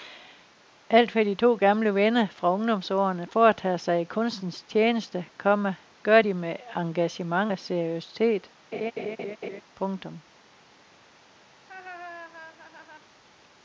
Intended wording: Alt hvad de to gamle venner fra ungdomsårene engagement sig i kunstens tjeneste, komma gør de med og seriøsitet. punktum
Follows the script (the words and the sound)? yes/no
no